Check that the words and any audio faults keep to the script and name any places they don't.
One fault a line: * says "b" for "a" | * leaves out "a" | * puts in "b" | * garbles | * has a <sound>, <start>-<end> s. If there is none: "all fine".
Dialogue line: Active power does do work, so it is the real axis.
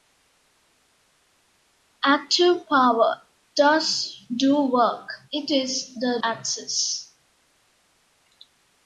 * leaves out "so"
* leaves out "real"